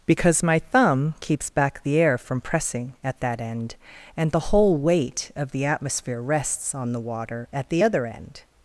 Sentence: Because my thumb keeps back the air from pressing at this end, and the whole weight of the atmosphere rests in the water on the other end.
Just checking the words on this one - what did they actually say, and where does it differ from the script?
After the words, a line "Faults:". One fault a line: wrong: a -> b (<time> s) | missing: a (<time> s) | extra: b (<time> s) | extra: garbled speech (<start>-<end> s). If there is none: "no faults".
Because my thumb keeps back the air from pressing at that end, and the whole weight of the atmosphere rests on the water at the other end.
Faults:
wrong: this -> that (3.2 s)
wrong: in -> on (6.7 s)
wrong: on -> at (7.5 s)